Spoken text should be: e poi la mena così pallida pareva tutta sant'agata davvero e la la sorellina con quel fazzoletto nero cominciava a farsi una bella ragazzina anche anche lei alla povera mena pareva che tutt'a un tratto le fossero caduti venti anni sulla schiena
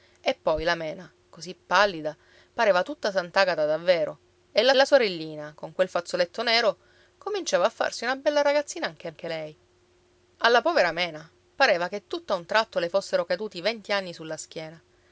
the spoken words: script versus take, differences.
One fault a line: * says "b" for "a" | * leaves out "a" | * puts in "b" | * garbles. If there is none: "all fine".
all fine